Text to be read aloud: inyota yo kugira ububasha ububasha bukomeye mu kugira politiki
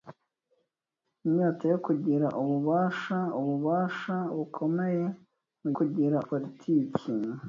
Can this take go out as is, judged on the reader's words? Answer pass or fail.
pass